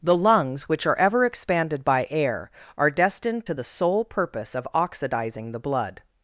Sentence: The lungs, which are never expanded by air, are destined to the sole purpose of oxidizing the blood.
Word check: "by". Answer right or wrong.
right